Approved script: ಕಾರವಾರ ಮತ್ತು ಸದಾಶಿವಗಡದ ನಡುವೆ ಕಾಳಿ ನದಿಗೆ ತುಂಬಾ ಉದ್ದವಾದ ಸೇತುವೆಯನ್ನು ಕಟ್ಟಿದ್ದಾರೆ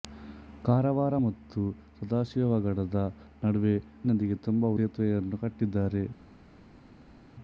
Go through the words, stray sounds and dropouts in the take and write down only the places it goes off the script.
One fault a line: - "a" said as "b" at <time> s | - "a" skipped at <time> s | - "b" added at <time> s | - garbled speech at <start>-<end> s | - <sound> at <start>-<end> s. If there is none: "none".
- "ಕಾಳಿ" skipped at 3.8 s
- "ಉದ್ದವಾದ" skipped at 4.7 s